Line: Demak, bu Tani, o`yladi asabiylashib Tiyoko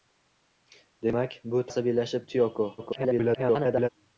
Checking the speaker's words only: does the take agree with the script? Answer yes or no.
no